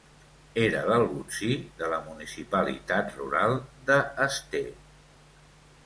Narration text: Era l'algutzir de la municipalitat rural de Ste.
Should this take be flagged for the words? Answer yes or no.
no